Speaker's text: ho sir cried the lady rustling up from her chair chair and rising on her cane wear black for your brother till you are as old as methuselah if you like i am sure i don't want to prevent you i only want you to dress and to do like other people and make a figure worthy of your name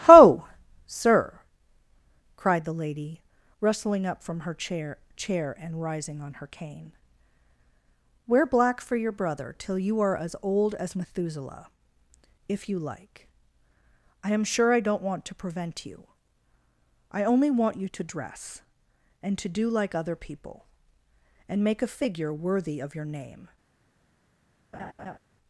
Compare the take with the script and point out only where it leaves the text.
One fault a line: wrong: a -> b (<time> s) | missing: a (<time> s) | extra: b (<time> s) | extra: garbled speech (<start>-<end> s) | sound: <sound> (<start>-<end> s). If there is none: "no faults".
sound: laugh (24.7-25.2 s)